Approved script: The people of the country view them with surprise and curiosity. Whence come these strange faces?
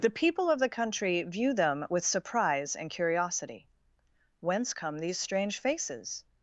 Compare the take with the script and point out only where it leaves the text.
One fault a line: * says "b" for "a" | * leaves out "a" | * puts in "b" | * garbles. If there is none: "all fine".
all fine